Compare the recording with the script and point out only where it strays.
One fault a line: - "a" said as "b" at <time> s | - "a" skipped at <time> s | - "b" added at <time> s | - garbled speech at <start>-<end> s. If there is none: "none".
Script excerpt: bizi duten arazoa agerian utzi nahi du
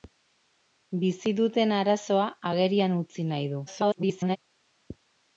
- garbled speech at 3.7-4.4 s